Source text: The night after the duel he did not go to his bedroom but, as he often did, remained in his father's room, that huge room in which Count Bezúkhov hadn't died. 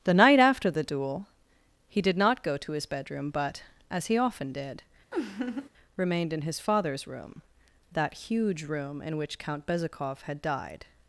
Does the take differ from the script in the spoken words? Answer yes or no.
yes